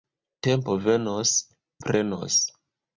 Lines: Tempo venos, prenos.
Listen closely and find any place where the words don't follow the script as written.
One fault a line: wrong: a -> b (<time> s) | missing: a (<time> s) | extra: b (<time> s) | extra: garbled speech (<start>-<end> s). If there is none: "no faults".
no faults